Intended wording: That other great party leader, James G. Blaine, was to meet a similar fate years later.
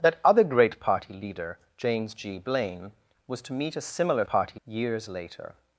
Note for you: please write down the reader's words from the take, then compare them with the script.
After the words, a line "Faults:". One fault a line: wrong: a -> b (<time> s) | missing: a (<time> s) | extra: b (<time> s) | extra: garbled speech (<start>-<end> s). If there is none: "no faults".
That other great party leader, James G. Blaine, was to meet a similar party years later.
Faults:
wrong: fate -> party (4.3 s)